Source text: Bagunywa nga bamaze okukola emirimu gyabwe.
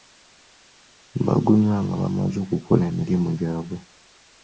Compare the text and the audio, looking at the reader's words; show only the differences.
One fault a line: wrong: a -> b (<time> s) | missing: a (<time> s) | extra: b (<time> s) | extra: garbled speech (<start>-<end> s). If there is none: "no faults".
no faults